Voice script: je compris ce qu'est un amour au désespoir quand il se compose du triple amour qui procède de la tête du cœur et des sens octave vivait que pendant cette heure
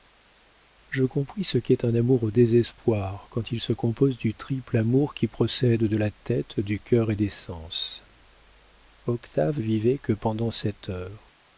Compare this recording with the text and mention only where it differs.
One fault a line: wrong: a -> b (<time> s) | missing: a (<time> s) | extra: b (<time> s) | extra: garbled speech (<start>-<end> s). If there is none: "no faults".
no faults